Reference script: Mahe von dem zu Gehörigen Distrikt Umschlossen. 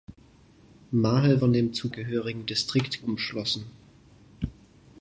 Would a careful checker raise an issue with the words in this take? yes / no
no